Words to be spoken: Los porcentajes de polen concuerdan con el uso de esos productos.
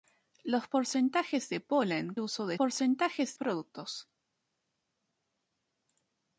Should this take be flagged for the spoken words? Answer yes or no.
yes